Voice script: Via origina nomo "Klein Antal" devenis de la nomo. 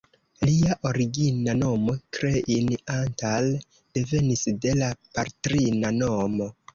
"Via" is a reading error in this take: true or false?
true